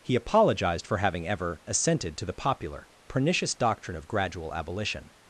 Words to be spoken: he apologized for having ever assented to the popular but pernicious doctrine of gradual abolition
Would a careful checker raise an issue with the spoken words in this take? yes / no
yes